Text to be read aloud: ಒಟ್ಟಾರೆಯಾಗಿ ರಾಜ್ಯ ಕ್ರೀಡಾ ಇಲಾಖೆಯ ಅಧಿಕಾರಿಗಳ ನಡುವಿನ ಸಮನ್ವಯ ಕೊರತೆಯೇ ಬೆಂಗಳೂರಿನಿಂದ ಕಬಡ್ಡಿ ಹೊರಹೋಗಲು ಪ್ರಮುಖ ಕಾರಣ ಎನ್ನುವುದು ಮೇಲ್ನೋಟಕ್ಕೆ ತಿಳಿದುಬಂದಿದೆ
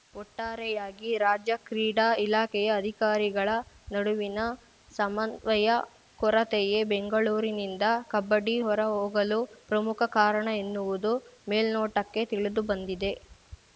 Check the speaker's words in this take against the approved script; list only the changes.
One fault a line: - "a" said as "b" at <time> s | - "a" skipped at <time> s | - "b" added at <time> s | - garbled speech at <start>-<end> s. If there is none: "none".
none